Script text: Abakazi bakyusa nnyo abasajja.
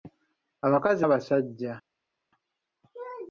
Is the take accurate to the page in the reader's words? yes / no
no